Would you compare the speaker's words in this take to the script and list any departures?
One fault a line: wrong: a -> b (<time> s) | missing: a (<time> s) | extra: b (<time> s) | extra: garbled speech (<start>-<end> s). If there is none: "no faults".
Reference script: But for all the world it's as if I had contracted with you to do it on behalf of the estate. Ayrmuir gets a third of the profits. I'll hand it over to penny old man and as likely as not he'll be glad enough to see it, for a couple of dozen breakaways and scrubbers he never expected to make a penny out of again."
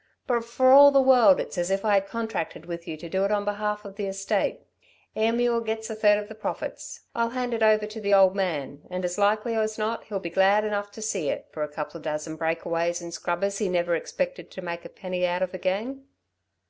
wrong: penny -> the (8.0 s)